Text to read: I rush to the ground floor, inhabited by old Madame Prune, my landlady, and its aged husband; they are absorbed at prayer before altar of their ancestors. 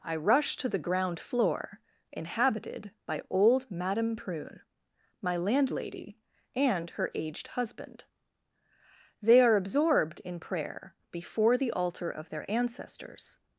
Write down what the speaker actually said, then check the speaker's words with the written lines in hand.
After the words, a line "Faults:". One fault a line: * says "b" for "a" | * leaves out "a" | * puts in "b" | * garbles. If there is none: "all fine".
I rush to the ground floor, inhabited by old Madame Prune, my landlady, and her aged husband; they are absorbed in prayer before the altar of their ancestors.
Faults:
* says "her" for "its"
* says "in" for "at"
* puts in "the"